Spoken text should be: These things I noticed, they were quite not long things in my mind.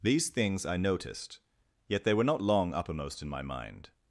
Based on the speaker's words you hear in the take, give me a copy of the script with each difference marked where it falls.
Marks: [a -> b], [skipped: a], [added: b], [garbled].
These things I noticed, [added: yet] they were [skipped: quite] not long [things -> uppermost] in my mind.